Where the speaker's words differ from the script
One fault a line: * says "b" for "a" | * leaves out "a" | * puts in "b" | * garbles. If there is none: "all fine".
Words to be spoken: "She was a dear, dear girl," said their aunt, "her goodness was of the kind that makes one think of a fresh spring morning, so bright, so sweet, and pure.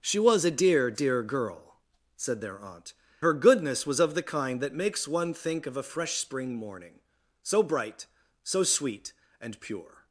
all fine